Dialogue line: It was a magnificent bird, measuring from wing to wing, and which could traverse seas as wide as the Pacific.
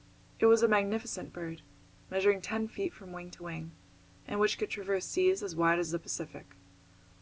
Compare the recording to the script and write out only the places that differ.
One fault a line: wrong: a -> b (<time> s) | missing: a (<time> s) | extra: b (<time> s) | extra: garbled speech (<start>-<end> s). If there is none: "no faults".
extra: ten feet (2.4 s)